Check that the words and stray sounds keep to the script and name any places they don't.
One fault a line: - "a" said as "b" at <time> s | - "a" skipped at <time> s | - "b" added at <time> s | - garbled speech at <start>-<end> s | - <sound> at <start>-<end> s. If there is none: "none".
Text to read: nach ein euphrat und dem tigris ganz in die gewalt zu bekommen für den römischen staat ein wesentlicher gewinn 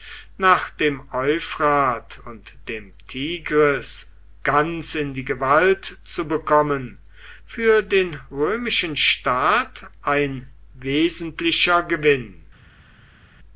- "ein" said as "dem" at 0.7 s